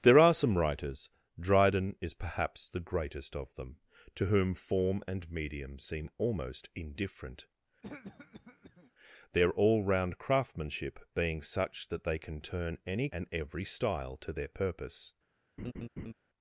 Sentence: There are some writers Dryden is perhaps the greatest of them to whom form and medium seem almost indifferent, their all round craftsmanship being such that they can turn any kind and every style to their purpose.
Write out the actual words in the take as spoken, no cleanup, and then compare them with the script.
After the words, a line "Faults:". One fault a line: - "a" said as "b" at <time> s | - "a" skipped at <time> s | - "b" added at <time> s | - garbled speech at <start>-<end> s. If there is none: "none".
There are some writers Dryden is perhaps the greatest of them to whom form and medium seem almost indifferent, their all round craftsmanship being such that they can turn any and every style to their purpose.
Faults:
- "kind" skipped at 13.1 s